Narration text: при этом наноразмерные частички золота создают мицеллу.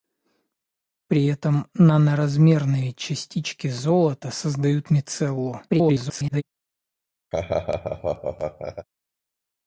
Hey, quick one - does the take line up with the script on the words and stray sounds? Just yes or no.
no